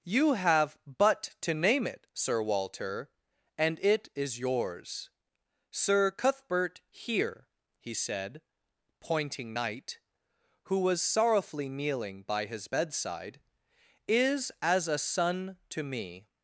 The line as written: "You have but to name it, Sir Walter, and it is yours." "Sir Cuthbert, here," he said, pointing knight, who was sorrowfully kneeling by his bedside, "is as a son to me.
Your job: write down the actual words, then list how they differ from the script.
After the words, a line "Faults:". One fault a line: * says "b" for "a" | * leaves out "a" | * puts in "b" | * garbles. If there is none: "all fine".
"You have but to name it, Sir Walter, and it is yours." "Sir Cuthbert, here," he said, pointing knight, who was sorrowfully kneeling by his bedside, "is as a son to me.
Faults:
all fine